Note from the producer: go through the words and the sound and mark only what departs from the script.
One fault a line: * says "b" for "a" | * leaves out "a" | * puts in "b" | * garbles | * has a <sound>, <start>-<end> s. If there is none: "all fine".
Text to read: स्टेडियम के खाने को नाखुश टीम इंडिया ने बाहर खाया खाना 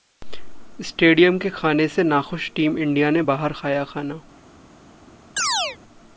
* says "से" for "को"
* has a chirp, 5.4-5.8 s